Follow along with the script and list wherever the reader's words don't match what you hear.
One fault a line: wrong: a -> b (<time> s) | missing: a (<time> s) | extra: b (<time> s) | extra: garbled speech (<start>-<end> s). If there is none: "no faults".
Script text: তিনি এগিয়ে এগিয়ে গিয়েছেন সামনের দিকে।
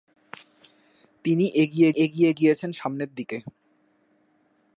no faults